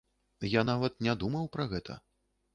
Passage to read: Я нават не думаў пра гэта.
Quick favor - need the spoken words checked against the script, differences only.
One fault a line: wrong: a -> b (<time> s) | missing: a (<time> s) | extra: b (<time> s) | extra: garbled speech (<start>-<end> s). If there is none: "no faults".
no faults